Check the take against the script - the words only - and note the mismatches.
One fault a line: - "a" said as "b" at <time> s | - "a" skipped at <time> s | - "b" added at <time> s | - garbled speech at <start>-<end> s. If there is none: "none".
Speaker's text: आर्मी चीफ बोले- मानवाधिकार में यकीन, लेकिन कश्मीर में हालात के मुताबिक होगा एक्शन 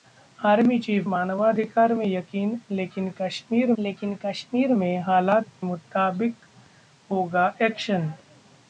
- "बोले" skipped at 1.0 s
- "लेकिन कश्मीर" added at 3.8 s
- "के" skipped at 5.4 s